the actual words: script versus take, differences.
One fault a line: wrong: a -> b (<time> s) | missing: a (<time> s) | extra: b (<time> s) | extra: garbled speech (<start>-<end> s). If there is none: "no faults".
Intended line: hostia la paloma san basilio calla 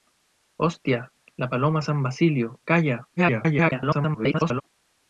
extra: garbled speech (3.2-4.6 s)